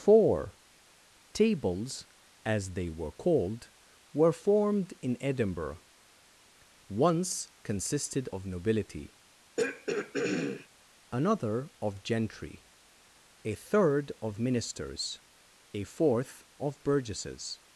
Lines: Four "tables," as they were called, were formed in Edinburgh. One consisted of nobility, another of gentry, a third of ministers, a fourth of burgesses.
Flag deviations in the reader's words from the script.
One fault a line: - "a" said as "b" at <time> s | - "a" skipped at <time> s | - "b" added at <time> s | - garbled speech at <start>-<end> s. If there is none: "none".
- "One" said as "Once" at 6.9 s